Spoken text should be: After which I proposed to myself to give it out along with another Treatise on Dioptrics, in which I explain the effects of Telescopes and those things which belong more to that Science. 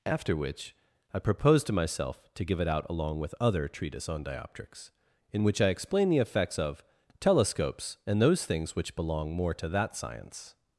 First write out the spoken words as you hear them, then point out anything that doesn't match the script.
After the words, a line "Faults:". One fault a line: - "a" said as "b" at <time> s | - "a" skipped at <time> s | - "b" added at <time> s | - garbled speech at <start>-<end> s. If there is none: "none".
After which I proposed to myself to give it out along with other Treatise on Dioptrics, in which I explain the effects of Telescopes and those things which belong more to that Science.
Faults:
- "another" said as "other" at 3.4 s